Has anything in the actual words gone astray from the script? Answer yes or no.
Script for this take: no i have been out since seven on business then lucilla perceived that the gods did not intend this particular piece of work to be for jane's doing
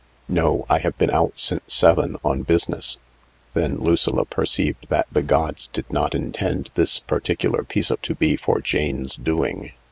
yes